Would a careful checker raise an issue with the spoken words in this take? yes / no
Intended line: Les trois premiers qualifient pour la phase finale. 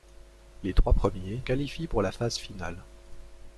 no